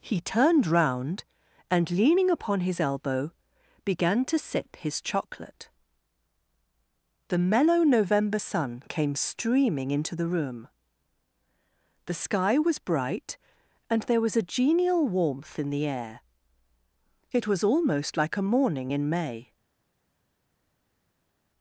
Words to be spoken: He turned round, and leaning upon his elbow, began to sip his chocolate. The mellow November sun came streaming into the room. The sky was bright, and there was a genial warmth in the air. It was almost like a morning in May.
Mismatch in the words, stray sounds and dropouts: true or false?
false